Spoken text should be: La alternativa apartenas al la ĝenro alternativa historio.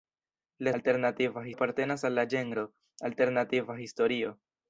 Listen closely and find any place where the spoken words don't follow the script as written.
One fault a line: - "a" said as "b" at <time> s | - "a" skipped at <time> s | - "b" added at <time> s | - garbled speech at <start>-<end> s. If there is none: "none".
none